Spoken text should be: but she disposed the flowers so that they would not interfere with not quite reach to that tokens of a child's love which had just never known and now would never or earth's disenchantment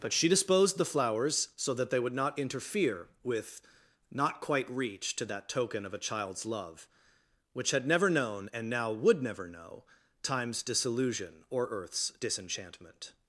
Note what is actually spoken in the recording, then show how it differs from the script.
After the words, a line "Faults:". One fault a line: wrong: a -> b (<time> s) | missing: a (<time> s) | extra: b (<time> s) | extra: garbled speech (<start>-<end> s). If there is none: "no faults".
but she disposed the flowers so that they would not interfere with not quite reach to that token of a child's love which had never known and now would never know time's disillusion or earth's disenchantment
Faults:
wrong: tokens -> token (5.5 s)
missing: just (7.8 s)
extra: know time's disillusion (9.5 s)